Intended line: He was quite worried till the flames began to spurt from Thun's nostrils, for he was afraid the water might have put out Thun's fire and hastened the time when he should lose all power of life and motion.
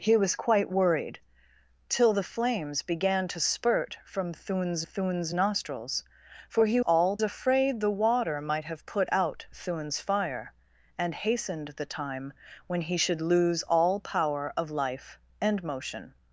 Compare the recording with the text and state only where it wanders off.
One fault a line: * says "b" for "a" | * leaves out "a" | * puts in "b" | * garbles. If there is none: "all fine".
* puts in "Thun's"
* says "all" for "was"